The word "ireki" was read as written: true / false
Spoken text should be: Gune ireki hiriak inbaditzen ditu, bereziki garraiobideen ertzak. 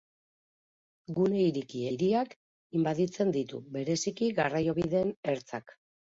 true